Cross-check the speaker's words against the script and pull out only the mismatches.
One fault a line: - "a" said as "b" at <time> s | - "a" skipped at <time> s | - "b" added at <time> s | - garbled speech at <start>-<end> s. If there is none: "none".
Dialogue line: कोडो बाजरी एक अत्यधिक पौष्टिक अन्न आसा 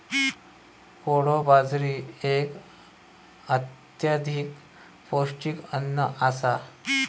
none